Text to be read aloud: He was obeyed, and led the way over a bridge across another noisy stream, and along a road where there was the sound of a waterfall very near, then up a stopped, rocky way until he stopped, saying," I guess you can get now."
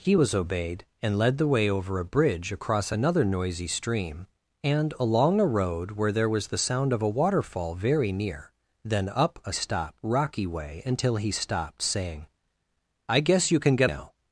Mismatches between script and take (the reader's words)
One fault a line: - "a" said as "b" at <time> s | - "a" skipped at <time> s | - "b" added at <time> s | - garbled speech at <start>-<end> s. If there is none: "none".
none